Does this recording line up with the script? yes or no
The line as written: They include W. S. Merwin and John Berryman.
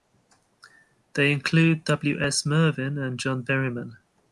yes